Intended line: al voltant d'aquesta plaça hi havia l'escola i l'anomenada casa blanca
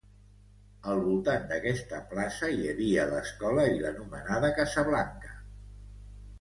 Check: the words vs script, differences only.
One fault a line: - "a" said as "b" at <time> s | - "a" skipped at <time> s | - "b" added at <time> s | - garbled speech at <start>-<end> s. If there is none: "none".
none